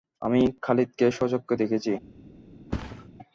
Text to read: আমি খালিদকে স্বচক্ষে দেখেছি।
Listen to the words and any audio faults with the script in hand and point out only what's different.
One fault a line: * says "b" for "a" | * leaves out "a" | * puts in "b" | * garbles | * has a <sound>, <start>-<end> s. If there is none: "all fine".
* has a thud, 2.7-3.1 s